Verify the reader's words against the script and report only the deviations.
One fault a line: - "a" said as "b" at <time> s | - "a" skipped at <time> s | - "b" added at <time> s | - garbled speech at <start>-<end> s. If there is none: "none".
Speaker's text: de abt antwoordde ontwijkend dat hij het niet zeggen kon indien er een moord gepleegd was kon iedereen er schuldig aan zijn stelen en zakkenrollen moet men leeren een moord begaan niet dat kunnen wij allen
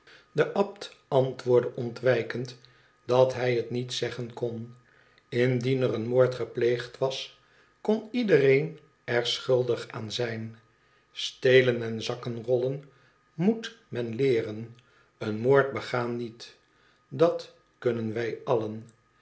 none